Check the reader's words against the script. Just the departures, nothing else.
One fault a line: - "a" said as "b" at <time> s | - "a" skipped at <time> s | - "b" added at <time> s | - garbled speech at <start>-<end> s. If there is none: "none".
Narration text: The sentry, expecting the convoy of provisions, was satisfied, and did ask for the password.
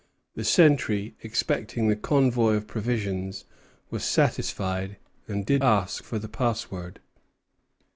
none